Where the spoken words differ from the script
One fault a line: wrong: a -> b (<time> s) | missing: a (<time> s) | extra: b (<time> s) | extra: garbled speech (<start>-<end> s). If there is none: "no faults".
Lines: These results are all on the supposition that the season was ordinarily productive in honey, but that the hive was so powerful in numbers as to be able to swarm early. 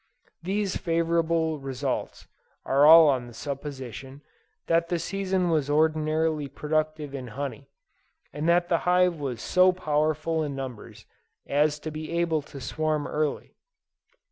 extra: favorable (0.8 s)
wrong: but -> and (8.3 s)